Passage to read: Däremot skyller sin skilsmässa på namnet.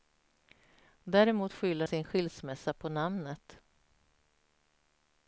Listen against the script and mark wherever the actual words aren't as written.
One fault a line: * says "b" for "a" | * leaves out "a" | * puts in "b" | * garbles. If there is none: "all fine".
all fine